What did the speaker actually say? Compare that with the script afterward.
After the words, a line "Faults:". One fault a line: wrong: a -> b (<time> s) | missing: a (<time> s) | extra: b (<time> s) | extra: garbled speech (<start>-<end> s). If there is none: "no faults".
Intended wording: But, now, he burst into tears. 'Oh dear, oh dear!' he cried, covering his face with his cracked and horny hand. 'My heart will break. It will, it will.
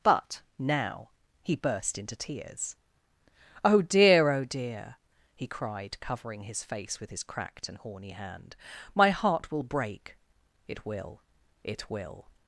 But, now, he burst into tears. 'Oh dear, oh dear!' he cried, covering his face with his cracked and horny hand. 'My heart will break. It will, it will.
Faults:
no faults